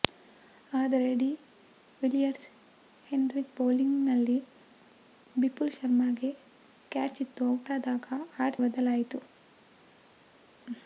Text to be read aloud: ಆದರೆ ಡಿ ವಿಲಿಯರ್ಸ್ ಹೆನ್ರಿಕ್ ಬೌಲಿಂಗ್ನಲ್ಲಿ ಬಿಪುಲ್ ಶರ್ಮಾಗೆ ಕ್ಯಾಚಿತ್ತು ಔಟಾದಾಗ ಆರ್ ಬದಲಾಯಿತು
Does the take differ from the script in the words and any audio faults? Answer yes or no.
no